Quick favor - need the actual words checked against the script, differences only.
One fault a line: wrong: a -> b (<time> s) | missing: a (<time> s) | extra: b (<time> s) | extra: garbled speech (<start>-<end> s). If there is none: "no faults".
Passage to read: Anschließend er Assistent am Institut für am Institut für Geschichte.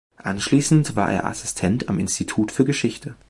extra: war (0.9 s)
missing: am Institut für (2.6 s)